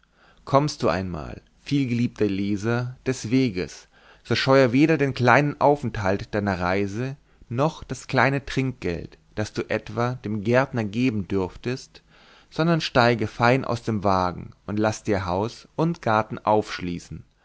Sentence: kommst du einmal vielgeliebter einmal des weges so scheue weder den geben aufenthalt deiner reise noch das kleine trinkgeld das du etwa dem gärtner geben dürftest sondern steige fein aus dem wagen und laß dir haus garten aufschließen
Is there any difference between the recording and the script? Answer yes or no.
yes